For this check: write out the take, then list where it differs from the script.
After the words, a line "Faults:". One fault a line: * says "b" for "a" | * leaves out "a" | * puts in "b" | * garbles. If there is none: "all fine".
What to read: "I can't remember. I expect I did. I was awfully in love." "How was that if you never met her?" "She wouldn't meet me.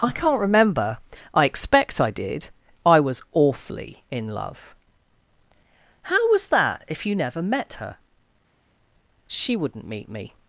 "I can't remember. I expect I did. I was awfully in love." "How was that if you never met her?" "She wouldn't meet me.
Faults:
all fine